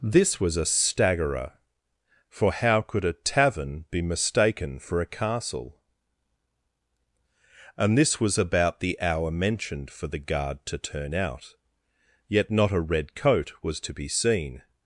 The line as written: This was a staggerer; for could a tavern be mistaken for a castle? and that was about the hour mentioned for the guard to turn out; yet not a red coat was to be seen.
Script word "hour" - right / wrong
right